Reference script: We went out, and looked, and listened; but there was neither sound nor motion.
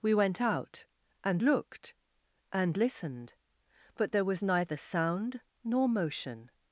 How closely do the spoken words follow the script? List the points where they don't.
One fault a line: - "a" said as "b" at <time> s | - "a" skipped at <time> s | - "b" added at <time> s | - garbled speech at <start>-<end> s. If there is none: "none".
none